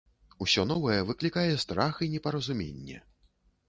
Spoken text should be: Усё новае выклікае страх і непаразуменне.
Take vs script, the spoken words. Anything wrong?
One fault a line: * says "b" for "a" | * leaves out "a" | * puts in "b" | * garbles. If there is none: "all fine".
all fine